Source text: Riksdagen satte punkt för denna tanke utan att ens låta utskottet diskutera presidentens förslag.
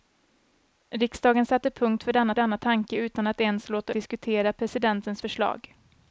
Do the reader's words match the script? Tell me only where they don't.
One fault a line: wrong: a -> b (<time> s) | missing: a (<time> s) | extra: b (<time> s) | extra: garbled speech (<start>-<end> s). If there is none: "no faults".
extra: denna (2.4 s)
missing: utskottet (3.9 s)